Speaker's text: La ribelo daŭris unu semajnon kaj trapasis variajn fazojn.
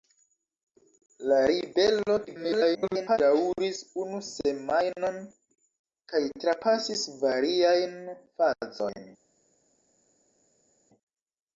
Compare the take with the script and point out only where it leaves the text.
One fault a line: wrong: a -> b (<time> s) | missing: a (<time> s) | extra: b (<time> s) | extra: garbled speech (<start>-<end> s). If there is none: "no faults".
extra: garbled speech (2.3-3.2 s)